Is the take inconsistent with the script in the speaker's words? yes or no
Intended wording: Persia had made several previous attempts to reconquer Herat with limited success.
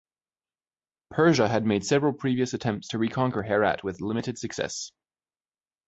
no